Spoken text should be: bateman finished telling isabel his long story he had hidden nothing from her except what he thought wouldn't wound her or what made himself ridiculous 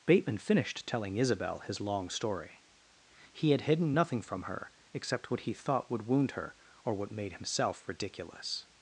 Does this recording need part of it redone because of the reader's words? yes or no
yes